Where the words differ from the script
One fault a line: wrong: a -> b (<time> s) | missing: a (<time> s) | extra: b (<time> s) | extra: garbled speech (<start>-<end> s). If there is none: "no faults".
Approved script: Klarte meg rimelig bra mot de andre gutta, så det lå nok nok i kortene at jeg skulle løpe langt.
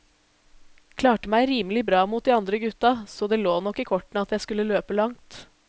missing: nok (3.8 s)